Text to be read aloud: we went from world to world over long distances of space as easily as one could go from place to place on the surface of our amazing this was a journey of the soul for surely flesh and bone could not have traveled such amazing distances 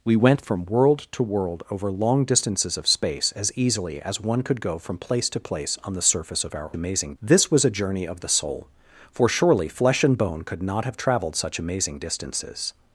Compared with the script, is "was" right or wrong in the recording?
right